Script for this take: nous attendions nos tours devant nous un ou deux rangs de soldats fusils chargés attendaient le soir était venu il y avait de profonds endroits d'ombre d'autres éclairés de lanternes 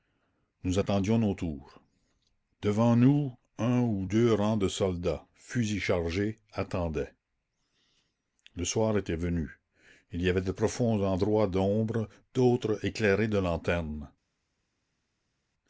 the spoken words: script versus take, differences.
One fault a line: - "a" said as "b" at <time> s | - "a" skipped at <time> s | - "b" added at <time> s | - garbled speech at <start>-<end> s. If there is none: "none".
none